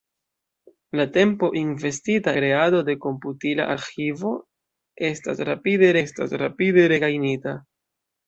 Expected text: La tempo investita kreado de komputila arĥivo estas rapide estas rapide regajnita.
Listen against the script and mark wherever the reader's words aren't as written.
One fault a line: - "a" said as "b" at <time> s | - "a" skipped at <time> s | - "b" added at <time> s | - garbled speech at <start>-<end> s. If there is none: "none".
none